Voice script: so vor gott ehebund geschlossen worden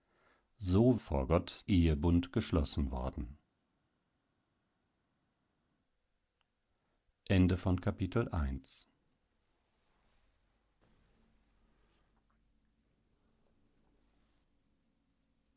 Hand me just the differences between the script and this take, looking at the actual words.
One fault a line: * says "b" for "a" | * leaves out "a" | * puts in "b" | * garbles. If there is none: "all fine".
all fine